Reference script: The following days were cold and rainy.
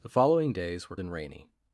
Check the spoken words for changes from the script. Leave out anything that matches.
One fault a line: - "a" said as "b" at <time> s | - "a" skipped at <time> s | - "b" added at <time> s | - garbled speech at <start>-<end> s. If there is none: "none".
- "cold" skipped at 0.9 s